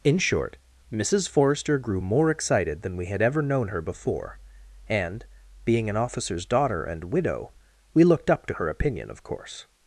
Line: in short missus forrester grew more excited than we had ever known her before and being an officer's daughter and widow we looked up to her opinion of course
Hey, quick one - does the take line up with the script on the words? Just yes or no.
yes